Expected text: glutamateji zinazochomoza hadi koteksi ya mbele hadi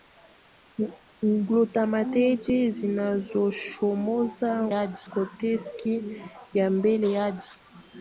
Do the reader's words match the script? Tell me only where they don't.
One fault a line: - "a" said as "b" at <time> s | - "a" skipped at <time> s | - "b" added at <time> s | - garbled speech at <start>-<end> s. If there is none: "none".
none